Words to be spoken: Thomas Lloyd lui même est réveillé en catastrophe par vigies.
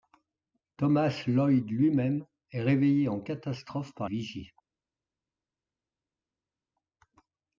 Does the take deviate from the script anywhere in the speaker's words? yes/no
no